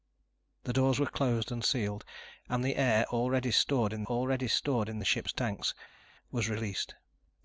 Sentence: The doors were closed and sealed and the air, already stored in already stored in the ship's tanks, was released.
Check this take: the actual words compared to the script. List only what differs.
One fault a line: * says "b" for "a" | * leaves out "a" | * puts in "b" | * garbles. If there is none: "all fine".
all fine